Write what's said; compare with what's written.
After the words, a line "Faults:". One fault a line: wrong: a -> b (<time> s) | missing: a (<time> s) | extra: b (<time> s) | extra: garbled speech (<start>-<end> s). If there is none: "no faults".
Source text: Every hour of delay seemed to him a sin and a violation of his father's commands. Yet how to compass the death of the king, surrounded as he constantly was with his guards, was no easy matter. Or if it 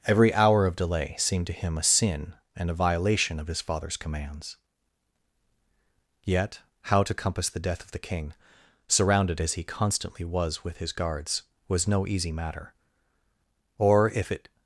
Every hour of delay seemed to him a sin and a violation of his father's commands. Yet how to compass the death of the king, surrounded as he constantly was with his guards, was no easy matter. Or if it
Faults:
no faults